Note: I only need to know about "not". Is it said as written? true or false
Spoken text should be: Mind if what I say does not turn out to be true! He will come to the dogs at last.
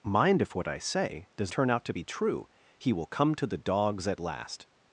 false